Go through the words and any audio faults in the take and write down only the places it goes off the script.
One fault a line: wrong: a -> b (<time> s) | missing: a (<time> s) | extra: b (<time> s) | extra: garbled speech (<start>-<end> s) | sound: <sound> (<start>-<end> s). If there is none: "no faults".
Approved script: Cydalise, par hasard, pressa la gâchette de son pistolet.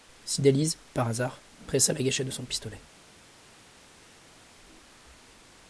no faults